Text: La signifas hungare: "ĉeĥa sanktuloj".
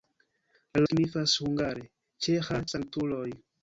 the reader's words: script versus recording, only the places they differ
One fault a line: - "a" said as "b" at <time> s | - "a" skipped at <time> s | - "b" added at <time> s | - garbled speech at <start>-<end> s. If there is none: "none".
none